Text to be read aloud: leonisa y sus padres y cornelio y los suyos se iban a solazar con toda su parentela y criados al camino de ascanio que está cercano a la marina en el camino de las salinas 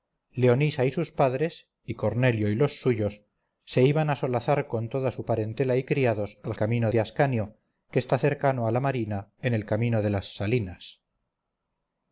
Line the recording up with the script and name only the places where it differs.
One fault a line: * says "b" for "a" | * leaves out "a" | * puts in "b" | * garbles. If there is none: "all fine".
all fine